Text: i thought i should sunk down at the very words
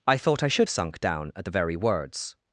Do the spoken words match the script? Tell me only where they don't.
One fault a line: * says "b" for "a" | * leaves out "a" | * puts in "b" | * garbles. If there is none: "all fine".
all fine